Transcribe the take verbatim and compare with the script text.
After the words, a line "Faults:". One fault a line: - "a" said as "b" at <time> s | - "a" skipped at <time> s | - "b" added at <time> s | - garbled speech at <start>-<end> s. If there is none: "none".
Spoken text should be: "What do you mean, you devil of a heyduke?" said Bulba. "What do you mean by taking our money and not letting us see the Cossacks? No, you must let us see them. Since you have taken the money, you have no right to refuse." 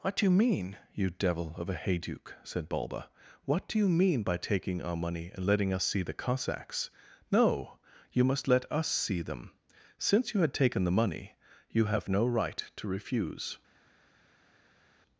"What do you mean, you devil of a heyduke?" said Bulba. "What do you mean by taking our money and letting us see the Cossacks? No, you must let us see them. Since you had taken the money, you have no right to refuse."
Faults:
- "not" skipped at 5.5 s
- "have" said as "had" at 10.4 s